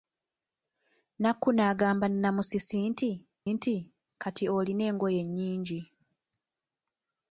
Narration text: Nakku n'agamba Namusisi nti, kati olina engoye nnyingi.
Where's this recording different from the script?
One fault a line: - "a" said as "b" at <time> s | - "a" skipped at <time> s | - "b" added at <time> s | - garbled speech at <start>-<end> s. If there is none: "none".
- "nti" added at 3.5 s